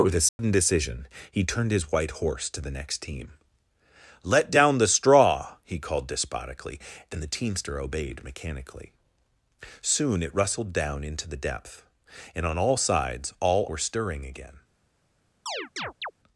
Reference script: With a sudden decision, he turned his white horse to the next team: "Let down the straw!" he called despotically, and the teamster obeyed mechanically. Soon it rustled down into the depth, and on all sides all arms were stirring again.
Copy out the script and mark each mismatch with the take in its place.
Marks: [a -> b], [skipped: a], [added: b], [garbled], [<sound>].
With a sudden [dropout] decision, he turned his white horse to the next team: "Let down the straw!" he called despotically, and the teamster obeyed mechanically. Soon it rustled down into the depth, and on all sides all [skipped: arms] were stirring again. [chirp]